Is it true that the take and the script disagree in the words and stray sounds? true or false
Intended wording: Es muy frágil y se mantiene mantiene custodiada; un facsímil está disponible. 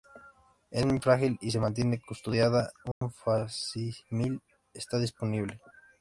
true